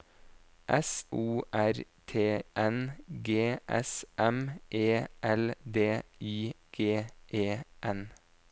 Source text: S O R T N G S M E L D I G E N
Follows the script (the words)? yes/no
yes